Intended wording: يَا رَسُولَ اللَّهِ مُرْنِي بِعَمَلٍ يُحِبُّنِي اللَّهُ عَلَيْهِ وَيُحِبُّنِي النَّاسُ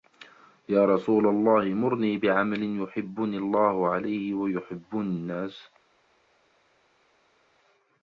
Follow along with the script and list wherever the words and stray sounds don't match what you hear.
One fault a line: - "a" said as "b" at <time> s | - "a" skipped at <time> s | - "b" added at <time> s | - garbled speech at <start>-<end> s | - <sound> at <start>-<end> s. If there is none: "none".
none